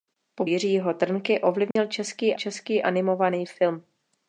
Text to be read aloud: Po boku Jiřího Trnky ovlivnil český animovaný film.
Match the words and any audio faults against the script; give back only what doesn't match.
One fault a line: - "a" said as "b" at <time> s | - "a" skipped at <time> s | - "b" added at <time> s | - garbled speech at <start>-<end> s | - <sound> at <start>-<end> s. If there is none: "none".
- "boku" skipped at 0.5 s
- dropout at 1.7-1.8 s
- "český" added at 2.3 s